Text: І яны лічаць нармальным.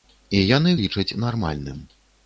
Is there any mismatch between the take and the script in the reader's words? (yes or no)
no